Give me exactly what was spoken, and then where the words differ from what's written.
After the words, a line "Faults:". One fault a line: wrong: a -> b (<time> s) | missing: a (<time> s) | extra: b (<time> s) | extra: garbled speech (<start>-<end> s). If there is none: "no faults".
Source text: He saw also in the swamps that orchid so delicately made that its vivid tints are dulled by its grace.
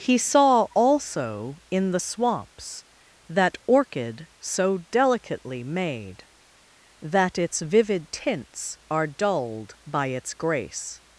He saw also in the swamps that orchid so delicately made that its vivid tints are dulled by its grace.
Faults:
no faults